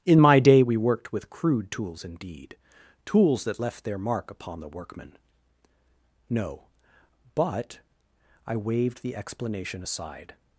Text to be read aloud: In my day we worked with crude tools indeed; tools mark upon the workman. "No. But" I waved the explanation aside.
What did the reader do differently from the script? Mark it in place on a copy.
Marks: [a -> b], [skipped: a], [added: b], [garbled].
In my day we worked with crude tools indeed; tools [added: that left their] mark upon the workman. "No. But" I waved the explanation aside.